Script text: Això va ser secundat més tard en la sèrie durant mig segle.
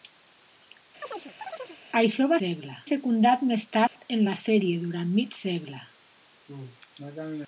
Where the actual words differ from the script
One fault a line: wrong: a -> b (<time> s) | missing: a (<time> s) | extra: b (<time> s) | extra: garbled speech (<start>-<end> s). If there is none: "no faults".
wrong: ser -> segle (2.4 s)